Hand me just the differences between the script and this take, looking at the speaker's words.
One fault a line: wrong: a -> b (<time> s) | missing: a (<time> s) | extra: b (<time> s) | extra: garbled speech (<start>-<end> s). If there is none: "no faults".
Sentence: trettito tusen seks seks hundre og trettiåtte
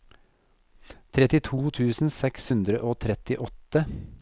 missing: seks (2.5 s)